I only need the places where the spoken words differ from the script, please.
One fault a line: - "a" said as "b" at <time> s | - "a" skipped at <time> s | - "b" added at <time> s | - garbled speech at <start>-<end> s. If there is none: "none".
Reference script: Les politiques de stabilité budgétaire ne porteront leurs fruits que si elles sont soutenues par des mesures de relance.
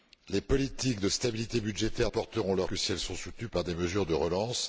- "ne" skipped at 2.1 s
- "fruits" skipped at 2.7 s